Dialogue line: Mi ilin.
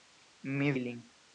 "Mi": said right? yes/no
yes